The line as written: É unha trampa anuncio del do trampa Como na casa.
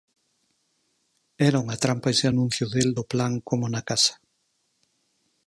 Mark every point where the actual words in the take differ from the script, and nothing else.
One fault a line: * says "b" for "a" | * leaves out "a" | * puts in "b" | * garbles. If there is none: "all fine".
* says "Era" for "É"
* puts in "ese"
* says "plan" for "trampa"